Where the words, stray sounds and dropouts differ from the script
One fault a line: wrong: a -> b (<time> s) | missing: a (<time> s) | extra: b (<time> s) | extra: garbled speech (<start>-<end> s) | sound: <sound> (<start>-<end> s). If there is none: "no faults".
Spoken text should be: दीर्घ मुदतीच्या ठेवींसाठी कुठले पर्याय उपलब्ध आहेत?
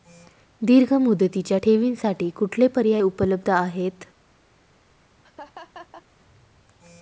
sound: laugh (5.2-6.0 s)